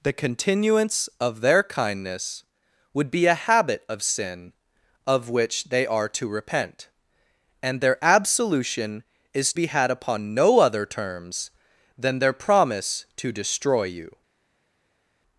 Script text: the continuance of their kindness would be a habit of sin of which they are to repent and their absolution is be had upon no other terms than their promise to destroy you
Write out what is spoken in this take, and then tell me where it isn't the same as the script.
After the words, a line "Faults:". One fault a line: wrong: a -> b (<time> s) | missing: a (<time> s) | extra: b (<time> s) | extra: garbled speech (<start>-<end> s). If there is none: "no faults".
the continuance of their kindness would be a habit of sin of which they are to repent and their absolution is be had upon no other terms than their promise to destroy you
Faults:
no faults